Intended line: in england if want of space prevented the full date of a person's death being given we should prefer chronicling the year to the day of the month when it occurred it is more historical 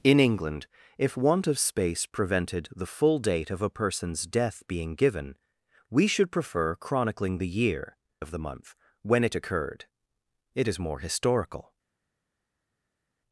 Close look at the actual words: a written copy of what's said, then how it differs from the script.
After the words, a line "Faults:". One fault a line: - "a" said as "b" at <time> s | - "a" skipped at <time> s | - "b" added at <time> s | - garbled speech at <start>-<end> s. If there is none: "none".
in england if want of space prevented the full date of a person's death being given we should prefer chronicling the year of the month when it occurred it is more historical
Faults:
- "to the day" skipped at 8.0 s